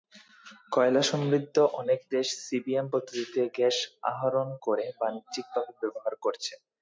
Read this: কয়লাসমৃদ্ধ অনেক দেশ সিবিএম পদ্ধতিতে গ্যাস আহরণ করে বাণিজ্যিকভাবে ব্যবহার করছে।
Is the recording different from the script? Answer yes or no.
no